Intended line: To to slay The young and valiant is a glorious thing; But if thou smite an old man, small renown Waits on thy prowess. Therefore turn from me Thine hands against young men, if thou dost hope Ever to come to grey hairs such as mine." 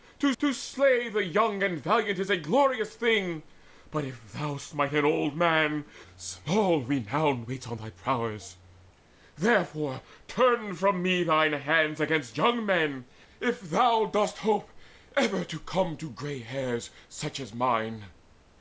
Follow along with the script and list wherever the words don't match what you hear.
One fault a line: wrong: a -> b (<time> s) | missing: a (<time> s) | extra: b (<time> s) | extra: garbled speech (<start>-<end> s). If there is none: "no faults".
no faults